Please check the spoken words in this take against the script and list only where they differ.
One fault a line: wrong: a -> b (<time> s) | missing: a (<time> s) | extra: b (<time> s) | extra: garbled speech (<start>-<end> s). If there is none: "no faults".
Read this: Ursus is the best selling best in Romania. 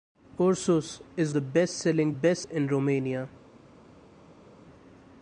no faults